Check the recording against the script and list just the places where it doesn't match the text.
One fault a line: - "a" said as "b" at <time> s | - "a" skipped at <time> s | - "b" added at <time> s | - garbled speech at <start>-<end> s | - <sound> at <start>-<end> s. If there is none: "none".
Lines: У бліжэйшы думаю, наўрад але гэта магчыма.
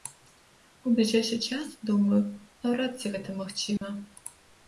- "час" added at 1.5 s
- "але" said as "ці" at 3.0 s
- dropout at 3.8-3.8 s